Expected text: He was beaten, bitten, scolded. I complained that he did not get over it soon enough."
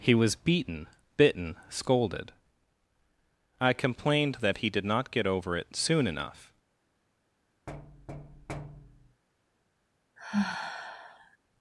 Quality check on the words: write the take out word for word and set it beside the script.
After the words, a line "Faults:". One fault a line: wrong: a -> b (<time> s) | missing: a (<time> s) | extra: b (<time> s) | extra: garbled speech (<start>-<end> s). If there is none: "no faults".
He was beaten, bitten, scolded. I complained that he did not get over it soon enough."
Faults:
no faults